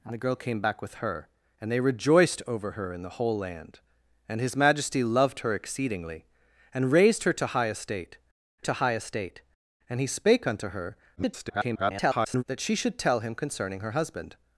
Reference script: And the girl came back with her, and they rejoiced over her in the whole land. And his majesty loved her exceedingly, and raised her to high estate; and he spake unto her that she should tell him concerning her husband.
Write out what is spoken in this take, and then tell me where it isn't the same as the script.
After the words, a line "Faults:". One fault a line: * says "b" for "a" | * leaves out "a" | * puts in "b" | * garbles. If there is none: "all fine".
And the girl came back with her, and they rejoiced over her in the whole land. And his majesty loved her exceedingly, and raised her to high estate to high estate; and he spake unto her [garbled] that she should tell him concerning her husband.
Faults:
* puts in "to high estate"
* garbles